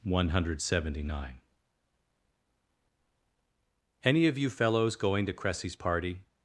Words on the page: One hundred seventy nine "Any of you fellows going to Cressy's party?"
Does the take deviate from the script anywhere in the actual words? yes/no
no